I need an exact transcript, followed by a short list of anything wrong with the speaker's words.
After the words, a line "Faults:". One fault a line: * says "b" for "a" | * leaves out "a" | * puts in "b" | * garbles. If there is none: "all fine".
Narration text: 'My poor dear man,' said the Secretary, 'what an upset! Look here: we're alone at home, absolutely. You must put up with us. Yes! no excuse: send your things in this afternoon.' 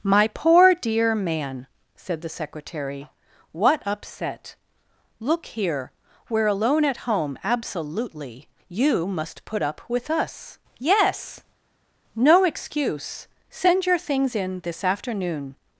'My poor dear man,' said the Secretary, 'what upset! Look here: we're alone at home, absolutely. You must put up with us. Yes! no excuse: send your things in this afternoon.'
Faults:
* leaves out "an"